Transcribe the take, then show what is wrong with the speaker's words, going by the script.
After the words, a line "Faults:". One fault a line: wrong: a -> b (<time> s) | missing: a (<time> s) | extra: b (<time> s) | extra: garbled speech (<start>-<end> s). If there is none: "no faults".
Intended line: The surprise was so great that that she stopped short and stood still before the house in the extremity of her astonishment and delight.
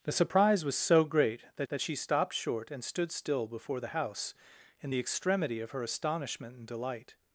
The surprise was so great that that she stopped short and stood still before the house in the extremity of her astonishment and delight.
Faults:
no faults